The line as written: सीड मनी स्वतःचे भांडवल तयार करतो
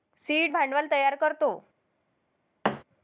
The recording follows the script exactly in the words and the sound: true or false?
false